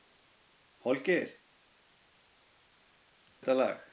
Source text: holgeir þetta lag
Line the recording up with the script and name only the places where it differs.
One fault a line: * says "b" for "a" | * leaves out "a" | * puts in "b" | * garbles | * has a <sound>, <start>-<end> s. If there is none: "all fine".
all fine